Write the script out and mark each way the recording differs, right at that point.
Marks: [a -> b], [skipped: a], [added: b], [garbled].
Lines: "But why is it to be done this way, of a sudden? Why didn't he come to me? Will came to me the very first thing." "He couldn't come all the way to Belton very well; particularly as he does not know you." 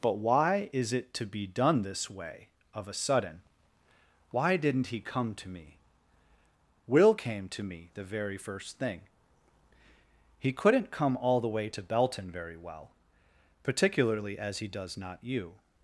"But why is it to be done this way, of a sudden? Why didn't he come to me? Will came to me the very first thing." "He couldn't come all the way to Belton very well; particularly as he does not [skipped: know] you."